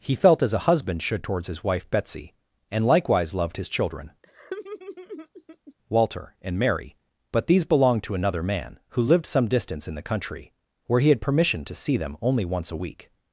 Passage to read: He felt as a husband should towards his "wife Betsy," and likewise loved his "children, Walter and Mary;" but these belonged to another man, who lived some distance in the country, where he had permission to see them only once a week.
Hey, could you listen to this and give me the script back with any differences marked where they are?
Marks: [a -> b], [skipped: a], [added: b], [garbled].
He felt as a husband should towards his "wife Betsy," and likewise loved his "children, Walter and Mary;" but these belonged to another man, who lived some distance in the country, where he had permission to see them only once a week.